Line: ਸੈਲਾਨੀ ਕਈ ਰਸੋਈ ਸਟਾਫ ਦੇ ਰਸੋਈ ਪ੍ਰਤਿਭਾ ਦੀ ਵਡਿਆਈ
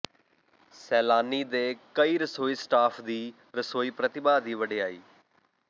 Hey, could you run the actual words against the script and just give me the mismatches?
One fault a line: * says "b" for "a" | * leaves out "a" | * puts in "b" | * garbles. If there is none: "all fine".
* puts in "ਦੇ"
* says "ਦੀ" for "ਦੇ"